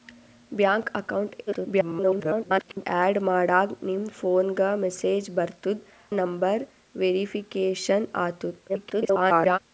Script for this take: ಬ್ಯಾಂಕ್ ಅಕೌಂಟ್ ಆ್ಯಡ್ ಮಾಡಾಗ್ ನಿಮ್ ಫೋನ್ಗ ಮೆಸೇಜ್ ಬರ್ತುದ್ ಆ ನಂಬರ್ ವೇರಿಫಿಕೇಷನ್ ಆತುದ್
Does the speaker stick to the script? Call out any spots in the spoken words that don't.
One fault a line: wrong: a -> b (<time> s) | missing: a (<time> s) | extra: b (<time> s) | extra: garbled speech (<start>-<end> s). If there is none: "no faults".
extra: garbled speech (1.5-2.9 s)
missing: ಆ (5.9 s)
extra: garbled speech (8.7-9.6 s)